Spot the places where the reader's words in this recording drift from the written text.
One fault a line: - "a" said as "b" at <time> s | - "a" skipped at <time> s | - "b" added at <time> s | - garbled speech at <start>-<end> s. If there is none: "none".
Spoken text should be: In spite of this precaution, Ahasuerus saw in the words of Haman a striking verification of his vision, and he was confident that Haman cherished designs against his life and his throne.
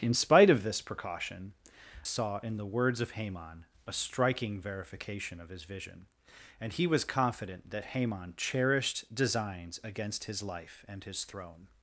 - "Ahasuerus" skipped at 1.5 s